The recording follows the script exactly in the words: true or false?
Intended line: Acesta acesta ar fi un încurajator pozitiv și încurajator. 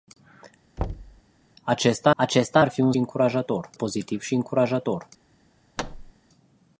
true